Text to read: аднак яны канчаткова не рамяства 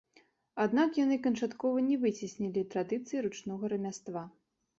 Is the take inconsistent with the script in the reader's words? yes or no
yes